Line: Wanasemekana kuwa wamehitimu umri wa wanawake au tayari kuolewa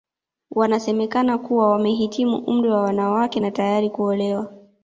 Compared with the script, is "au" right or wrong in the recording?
wrong